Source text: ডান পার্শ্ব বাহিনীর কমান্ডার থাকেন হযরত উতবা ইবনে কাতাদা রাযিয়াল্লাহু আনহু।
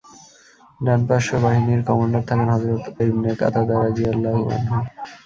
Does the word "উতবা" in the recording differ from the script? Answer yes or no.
yes